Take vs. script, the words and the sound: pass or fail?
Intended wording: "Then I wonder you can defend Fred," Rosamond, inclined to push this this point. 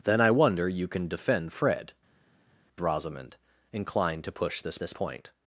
pass